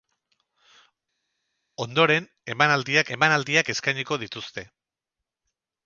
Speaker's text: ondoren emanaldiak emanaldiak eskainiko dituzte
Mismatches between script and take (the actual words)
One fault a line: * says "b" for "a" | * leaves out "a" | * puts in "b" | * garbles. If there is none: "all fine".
all fine